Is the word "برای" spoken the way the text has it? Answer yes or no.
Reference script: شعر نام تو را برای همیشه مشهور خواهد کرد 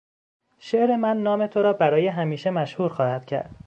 yes